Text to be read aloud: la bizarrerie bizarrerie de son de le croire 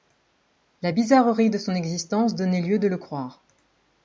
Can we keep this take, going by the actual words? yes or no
no